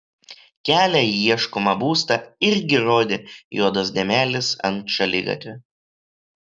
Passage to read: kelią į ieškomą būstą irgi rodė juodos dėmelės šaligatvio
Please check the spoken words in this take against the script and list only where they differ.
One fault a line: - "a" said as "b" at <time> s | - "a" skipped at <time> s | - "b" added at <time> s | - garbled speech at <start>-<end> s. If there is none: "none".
- "ant" added at 4.7 s